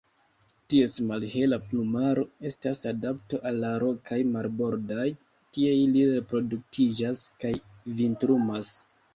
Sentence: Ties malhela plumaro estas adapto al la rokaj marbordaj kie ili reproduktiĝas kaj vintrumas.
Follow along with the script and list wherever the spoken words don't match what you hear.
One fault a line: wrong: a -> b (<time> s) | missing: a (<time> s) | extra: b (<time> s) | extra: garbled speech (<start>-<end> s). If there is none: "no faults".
no faults